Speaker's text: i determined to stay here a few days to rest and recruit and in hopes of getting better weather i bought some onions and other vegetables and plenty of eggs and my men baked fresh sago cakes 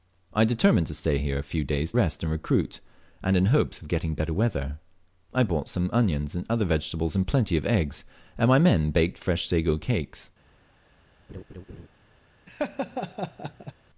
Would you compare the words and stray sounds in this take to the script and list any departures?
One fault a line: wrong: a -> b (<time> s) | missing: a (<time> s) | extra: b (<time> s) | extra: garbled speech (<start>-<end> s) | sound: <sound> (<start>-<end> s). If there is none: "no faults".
missing: to (1.9 s)
sound: laugh (11.3-11.9 s)
sound: laugh (12.5-13.7 s)